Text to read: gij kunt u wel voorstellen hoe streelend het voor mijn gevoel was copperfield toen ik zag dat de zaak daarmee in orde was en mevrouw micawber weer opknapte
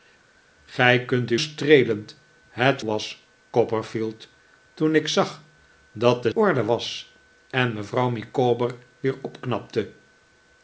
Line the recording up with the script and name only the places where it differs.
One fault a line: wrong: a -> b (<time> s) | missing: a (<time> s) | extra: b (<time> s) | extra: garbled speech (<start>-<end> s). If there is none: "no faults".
missing: wel voorstellen hoe (1.4 s)
missing: voor mijn gevoel (2.8 s)
missing: zaak daarmee in (6.3 s)